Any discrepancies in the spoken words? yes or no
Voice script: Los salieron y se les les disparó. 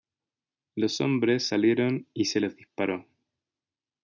yes